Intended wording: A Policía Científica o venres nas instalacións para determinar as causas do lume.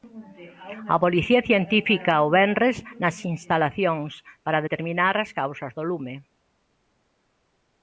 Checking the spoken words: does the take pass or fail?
pass